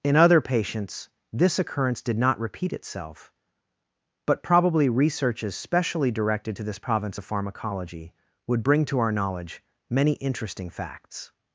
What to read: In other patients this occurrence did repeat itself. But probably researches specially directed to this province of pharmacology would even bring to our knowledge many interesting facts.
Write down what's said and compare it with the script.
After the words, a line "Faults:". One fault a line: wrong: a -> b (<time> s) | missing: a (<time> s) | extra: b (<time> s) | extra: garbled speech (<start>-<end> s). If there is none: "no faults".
In other patients this occurrence did not repeat itself. But probably researches specially directed to this province of pharmacology would bring to our knowledge many interesting facts.
Faults:
extra: not (2.2 s)
missing: even (8.6 s)